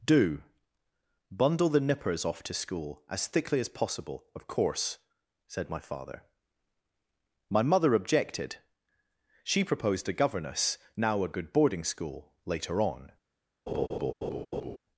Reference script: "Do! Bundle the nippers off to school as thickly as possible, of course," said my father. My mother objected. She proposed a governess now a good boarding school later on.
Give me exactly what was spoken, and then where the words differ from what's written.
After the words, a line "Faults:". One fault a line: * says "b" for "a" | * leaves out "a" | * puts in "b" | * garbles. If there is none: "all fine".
"Do! Bundle the nippers off to school as thickly as possible, of course," said my father. My mother objected. She proposed a governess now a good boarding school later on.
Faults:
all fine